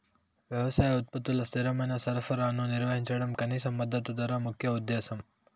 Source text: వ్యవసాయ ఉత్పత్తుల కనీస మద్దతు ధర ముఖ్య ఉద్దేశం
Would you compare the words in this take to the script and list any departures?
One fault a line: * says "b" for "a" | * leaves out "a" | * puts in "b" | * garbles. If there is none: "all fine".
* puts in "స్థిరమైన సరఫరాను నిర్వహించడం"